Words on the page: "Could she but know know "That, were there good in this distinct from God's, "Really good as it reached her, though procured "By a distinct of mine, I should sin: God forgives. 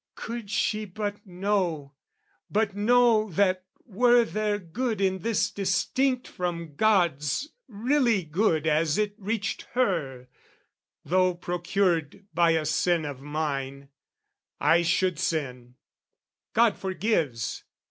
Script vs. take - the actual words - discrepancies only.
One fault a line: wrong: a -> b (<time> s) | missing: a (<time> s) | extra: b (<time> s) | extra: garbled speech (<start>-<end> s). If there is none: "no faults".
extra: but (2.5 s)
wrong: distinct -> sin (12.7 s)